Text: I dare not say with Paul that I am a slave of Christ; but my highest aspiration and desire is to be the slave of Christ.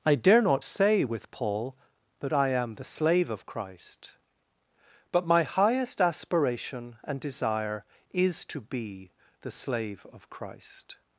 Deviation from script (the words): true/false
true